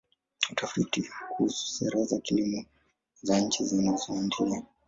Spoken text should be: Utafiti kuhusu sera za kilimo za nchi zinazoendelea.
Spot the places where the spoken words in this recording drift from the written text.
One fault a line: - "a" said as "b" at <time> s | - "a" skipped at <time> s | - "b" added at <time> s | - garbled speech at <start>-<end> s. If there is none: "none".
none